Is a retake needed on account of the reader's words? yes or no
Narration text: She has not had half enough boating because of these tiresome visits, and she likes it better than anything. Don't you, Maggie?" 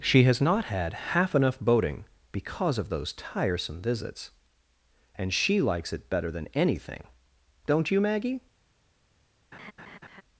yes